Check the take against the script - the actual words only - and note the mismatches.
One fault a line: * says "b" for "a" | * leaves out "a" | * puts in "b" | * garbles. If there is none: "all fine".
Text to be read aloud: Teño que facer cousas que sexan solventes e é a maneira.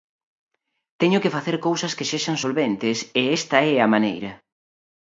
* puts in "esta"